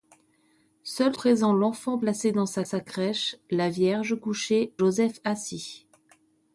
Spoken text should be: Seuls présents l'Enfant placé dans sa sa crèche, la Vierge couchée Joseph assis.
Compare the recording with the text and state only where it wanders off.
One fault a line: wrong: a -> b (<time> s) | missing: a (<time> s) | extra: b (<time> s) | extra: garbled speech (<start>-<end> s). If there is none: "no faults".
no faults